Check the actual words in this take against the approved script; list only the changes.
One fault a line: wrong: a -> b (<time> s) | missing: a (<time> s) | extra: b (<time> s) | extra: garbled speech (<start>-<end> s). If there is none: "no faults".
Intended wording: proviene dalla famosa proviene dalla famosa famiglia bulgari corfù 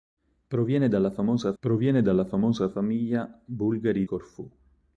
no faults